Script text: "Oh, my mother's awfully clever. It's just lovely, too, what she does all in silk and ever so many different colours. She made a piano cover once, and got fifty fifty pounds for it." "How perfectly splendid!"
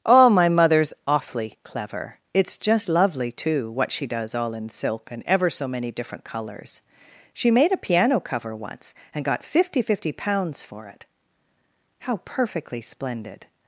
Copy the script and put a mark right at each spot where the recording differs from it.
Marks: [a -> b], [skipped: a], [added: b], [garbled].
"Oh, my mother's awfully clever. It's just lovely, too, what she does all in silk and ever so many different colours. She made a piano cover once, and got fifty fifty pounds for it." "How perfectly splendid!"